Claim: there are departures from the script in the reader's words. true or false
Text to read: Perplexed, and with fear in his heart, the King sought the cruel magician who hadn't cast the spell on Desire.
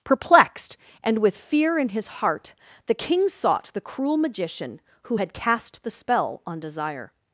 true